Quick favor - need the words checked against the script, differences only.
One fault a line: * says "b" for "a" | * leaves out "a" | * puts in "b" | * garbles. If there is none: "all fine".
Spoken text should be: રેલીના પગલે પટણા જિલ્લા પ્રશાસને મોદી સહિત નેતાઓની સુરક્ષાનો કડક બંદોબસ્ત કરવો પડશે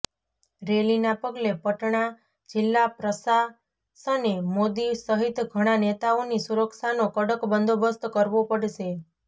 * puts in "ઘણા"